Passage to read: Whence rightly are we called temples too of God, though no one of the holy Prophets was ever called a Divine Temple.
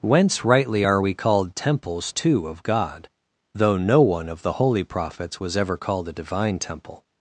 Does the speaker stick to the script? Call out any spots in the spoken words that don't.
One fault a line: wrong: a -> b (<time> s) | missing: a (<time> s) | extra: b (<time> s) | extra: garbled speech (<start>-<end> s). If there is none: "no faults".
no faults